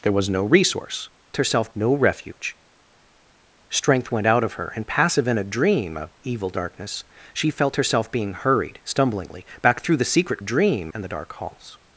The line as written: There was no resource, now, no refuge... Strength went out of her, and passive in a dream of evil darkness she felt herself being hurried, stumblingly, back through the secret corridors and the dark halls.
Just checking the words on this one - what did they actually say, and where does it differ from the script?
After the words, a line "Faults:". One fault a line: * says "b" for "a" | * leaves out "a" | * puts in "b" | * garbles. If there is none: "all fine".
There was no resource, herself, no refuge... Strength went out of her, and passive in a dream of evil darkness she felt herself being hurried, stumblingly, back through the secret dream and the dark halls.
Faults:
* says "herself" for "now"
* says "dream" for "corridors"